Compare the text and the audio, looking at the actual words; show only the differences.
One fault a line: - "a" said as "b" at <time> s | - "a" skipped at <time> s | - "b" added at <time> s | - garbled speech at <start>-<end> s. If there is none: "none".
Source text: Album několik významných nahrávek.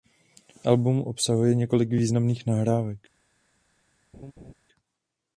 - "obsahuje" added at 1.0 s